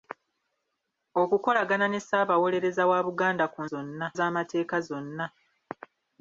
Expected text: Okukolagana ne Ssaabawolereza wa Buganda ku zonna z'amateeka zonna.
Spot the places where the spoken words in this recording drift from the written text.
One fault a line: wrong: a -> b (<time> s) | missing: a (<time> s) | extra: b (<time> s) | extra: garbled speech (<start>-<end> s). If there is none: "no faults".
no faults